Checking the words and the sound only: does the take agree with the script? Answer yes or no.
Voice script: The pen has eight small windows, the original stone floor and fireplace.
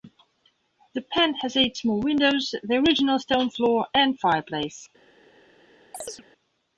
no